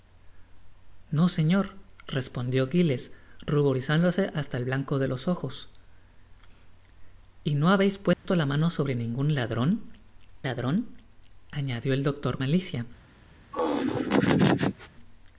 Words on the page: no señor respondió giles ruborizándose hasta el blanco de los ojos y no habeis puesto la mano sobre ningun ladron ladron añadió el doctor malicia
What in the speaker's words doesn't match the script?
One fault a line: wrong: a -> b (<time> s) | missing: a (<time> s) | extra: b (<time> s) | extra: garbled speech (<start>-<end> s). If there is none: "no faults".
no faults